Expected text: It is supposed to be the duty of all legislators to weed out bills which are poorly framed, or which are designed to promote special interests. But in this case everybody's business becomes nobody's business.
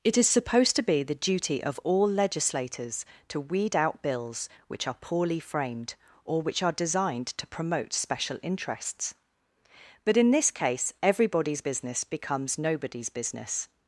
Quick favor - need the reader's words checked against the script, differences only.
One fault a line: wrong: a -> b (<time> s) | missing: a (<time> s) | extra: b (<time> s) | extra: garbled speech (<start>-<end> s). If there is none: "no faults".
no faults